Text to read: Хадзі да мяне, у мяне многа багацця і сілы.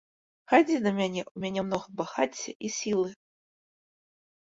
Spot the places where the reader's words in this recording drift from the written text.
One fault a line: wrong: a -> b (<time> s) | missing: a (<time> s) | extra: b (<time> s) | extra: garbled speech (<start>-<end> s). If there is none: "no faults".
no faults